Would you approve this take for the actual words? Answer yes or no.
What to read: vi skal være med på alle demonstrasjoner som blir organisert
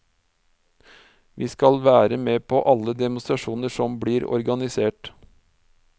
yes